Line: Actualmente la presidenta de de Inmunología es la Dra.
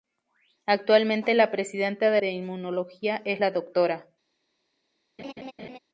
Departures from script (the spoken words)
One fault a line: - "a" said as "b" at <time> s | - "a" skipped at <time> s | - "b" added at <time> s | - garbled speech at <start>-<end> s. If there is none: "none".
none